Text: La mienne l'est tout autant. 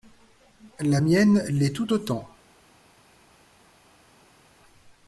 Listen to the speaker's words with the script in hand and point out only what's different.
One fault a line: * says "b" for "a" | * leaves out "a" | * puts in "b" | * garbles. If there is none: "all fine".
all fine